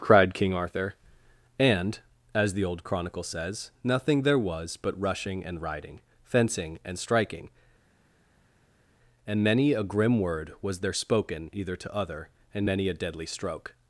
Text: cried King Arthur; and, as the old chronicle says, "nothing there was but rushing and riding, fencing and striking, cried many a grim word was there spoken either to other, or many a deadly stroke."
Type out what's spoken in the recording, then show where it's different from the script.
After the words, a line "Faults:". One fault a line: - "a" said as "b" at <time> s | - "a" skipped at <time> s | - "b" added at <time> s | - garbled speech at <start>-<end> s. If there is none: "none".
cried King Arthur; and, as the old chronicle says, "nothing there was but rushing and riding, fencing and striking, and many a grim word was there spoken either to other, and many a deadly stroke."
Faults:
- "cried" said as "and" at 9.3 s
- "or" said as "and" at 12.5 s